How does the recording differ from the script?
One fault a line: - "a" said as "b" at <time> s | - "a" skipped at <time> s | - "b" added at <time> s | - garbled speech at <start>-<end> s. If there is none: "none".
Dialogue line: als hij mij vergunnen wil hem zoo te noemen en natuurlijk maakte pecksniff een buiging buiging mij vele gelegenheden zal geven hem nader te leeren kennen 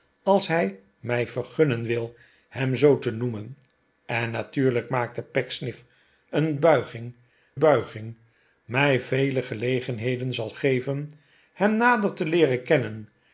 none